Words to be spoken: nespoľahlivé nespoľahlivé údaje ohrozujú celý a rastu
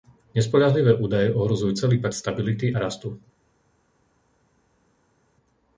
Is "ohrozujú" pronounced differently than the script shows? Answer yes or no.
no